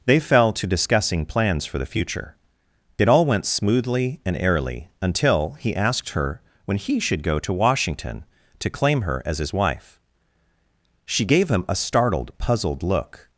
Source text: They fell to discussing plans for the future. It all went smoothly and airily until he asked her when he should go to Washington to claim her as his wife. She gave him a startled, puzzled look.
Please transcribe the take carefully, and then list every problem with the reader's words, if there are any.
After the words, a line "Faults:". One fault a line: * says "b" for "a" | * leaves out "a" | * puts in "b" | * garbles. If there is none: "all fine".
They fell to discussing plans for the future. It all went smoothly and airily until he asked her when he should go to Washington to claim her as his wife. She gave him a startled, puzzled look.
Faults:
all fine